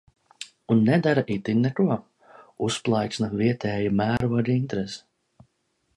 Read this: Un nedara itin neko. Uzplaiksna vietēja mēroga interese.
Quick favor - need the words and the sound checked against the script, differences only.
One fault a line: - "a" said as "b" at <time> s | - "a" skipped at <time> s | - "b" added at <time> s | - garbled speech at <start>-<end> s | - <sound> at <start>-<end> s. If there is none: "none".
- dropout at 4.2-4.2 s